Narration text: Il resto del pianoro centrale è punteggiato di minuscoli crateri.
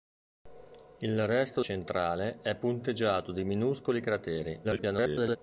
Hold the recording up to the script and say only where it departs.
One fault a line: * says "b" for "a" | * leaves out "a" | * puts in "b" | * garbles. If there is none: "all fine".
* leaves out "del pianoro"
* garbles